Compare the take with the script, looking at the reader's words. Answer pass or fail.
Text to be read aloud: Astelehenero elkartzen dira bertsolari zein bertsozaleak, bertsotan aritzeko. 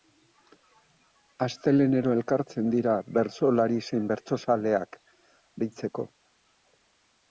fail